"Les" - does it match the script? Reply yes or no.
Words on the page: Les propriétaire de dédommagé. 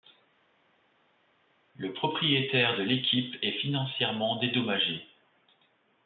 no